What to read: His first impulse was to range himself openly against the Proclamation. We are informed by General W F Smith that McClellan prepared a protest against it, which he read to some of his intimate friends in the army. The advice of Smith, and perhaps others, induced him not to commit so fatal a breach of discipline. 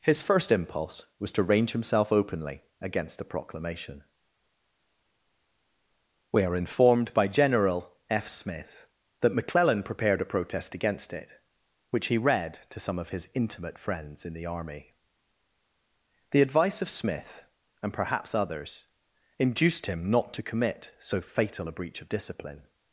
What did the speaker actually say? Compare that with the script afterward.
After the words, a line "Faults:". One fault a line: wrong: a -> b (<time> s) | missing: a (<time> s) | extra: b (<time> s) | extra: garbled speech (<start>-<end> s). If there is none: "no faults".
His first impulse was to range himself openly against the Proclamation. We are informed by General. F. Smith that McClellan prepared a protest against it, which he read to some of his intimate friends in the army. The advice of Smith, and perhaps others, induced him not to commit so fatal a breach of discipline.
Faults:
missing: W (7.9 s)